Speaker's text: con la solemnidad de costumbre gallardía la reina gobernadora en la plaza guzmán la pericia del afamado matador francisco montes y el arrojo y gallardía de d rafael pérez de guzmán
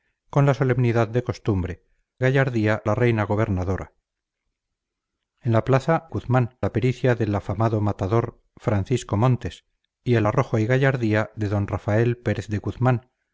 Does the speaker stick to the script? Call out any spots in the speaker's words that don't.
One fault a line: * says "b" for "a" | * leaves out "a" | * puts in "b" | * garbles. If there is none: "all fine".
all fine